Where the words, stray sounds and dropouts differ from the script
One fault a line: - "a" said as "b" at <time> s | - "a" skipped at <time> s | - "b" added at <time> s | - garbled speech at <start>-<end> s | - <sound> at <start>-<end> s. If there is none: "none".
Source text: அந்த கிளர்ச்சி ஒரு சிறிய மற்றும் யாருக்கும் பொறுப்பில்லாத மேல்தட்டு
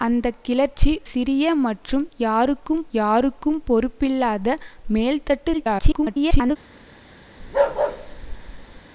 - "ஒரு" skipped at 0.9 s
- "யாருக்கும்" added at 3.0 s
- garbled speech at 5.5-6.6 s
- bark at 7.4-8.8 s